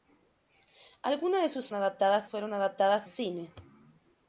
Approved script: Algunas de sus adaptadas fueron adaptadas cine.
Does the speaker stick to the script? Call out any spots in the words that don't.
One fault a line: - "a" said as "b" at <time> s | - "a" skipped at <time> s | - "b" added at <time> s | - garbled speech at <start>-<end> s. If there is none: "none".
none